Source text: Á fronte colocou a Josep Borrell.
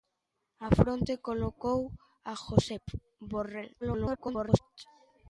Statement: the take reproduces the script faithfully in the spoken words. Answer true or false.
false